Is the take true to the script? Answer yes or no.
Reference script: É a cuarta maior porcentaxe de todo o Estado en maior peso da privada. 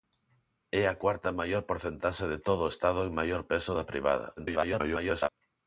no